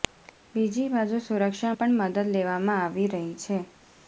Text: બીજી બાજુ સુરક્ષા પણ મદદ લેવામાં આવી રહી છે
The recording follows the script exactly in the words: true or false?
true